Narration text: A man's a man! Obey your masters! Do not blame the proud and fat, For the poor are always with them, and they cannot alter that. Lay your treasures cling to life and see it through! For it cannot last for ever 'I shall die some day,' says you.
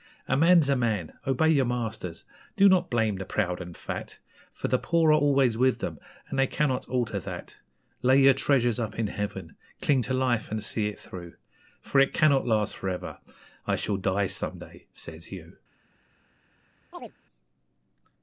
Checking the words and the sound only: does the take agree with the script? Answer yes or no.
no